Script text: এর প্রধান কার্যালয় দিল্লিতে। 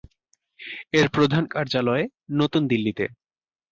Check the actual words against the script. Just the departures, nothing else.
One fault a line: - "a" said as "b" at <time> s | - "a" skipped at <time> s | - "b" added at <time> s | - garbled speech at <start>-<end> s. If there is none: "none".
- "নতুন" added at 2.3 s